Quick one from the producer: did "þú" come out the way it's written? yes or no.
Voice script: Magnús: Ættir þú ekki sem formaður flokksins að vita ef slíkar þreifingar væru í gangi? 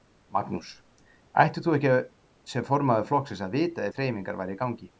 yes